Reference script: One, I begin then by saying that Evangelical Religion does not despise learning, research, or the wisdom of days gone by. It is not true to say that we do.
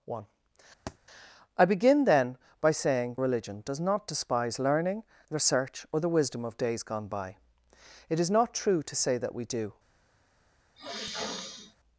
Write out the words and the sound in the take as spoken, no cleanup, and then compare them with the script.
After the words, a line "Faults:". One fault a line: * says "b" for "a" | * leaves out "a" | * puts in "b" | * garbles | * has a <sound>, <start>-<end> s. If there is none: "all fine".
One, I begin then by saying Religion does not despise learning, research, or the wisdom of days gone by. It is not true to say that we do.
Faults:
* has a thud, 0.9-1.0 s
* leaves out "that Evangelical"
* has a sniff, 10.8-11.8 s